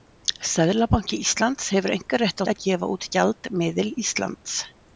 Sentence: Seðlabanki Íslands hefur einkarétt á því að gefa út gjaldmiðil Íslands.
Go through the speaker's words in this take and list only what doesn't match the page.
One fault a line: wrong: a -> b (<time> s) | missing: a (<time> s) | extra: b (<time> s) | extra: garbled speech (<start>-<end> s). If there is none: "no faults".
missing: því (2.5 s)